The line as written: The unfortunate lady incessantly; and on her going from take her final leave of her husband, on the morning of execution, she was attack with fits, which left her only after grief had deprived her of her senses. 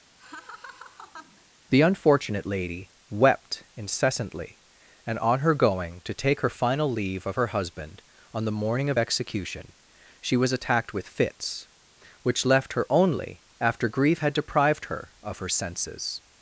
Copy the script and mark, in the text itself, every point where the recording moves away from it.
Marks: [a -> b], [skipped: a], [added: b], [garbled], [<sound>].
[laugh] The unfortunate lady [added: wept] incessantly; and on her going [from -> to] take her final leave of her husband, on the morning of execution, she was [attack -> attacked] with fits, which left her only after grief had deprived her of her senses.